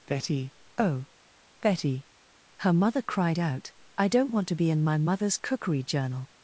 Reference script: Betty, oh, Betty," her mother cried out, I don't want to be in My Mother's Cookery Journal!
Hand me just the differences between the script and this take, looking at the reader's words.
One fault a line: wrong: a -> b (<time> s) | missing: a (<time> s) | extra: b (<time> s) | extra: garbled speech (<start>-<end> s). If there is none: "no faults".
no faults